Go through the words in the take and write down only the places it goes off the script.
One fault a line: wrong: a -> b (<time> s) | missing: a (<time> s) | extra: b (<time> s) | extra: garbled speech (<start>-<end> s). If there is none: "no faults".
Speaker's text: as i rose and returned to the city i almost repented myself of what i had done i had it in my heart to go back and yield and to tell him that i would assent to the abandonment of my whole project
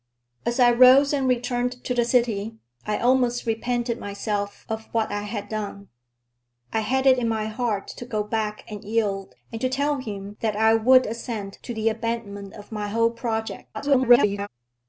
extra: garbled speech (13.7-14.5 s)